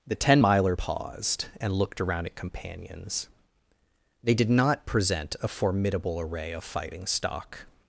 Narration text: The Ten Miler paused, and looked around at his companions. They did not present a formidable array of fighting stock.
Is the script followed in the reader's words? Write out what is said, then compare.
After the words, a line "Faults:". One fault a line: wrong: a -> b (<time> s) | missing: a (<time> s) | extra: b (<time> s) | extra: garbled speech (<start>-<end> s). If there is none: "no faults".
The Ten Miler paused, and looked around at companions. They did not present a formidable array of fighting stock.
Faults:
missing: his (2.3 s)